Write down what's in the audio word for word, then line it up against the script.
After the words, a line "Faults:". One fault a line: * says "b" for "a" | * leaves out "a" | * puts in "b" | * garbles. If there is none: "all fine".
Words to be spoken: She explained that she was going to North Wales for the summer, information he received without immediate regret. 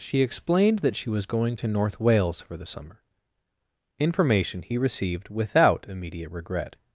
She explained that she was going to North Wales for the summer, information he received without immediate regret.
Faults:
all fine